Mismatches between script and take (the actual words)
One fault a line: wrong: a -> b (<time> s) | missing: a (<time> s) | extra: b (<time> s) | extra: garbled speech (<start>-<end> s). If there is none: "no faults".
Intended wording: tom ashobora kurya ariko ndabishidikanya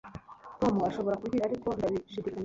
no faults